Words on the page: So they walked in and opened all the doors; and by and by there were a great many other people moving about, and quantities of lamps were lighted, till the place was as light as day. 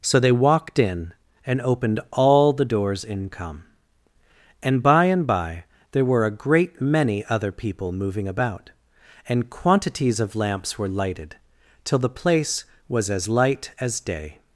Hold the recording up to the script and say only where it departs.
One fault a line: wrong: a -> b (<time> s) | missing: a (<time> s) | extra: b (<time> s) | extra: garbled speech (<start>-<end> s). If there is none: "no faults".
extra: in come (3.0 s)